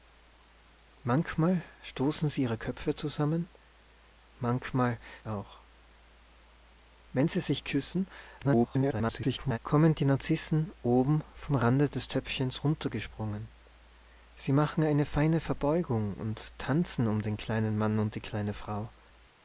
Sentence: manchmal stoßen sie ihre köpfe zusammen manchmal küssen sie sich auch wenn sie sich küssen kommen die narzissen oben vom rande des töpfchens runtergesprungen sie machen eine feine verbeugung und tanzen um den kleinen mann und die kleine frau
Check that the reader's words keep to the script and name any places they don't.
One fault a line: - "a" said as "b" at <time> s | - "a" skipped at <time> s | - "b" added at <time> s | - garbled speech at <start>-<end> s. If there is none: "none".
- "küssen sie sich" skipped at 5.0 s
- garbled speech at 8.4-9.6 s